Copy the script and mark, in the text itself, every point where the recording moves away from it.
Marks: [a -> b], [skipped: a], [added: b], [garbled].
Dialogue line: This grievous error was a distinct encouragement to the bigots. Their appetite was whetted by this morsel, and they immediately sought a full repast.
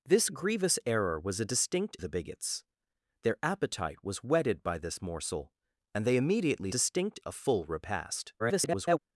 This grievous error was a distinct [skipped: encouragement to] the bigots. Their appetite was whetted by this morsel, and they immediately [sought -> distinct] a full repast. [garbled]